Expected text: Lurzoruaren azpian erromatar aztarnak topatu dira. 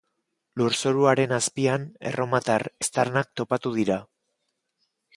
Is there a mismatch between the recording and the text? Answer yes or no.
no